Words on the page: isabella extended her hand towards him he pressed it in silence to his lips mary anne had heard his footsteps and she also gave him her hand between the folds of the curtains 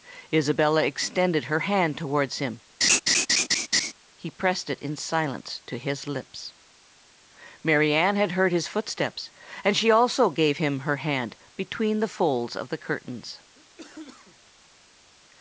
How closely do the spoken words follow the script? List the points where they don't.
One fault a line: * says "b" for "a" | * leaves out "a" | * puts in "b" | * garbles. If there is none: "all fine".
all fine